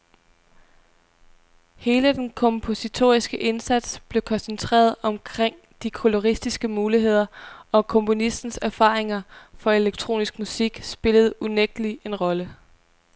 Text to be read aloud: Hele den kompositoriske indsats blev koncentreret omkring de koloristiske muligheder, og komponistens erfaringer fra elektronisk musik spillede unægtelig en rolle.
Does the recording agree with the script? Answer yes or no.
yes